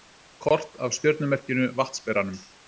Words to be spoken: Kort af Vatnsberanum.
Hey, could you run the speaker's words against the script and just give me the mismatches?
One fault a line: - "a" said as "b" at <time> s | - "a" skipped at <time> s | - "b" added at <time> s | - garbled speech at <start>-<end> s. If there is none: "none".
- "stjörnumerkinu" added at 1.0 s